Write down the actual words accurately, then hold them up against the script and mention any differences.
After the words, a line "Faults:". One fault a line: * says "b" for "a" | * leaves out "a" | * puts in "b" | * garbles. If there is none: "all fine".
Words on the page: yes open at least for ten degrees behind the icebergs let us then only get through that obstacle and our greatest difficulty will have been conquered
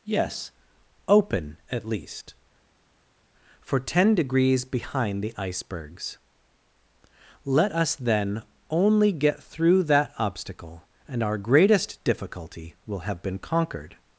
yes open at least for ten degrees behind the icebergs let us then only get through that obstacle and our greatest difficulty will have been conquered
Faults:
all fine